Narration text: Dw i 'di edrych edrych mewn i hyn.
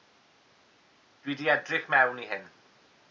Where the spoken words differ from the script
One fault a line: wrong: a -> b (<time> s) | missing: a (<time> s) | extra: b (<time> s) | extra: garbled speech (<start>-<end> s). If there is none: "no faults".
missing: edrych (1.9 s)